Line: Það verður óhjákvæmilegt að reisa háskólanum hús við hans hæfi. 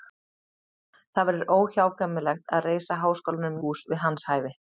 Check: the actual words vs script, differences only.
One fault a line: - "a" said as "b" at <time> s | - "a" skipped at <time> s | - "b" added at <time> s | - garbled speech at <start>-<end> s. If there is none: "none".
none